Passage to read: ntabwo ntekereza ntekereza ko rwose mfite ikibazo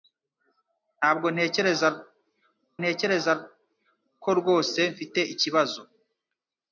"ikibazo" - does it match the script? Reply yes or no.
yes